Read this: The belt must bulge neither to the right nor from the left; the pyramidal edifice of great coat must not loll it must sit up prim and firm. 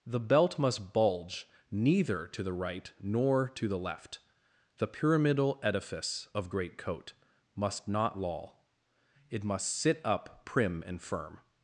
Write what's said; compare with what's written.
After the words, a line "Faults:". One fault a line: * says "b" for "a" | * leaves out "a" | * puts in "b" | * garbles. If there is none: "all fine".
The belt must bulge neither to the right nor to the left; the pyramidal edifice of great coat must not loll it must sit up prim and firm.
Faults:
* says "to" for "from"